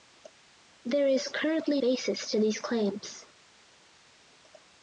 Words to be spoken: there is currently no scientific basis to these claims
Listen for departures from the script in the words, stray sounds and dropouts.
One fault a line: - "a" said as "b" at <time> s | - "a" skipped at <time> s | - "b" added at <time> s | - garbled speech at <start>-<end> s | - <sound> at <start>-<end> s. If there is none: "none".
- "no scientific" skipped at 1.8 s